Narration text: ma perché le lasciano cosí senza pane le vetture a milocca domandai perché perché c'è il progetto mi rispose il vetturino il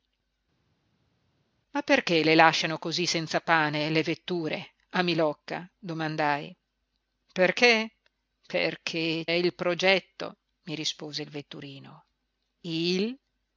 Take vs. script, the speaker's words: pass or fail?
fail